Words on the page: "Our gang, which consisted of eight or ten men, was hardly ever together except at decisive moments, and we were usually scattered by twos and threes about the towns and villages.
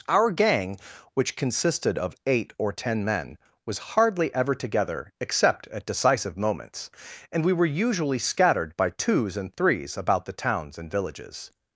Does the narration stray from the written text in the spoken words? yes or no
no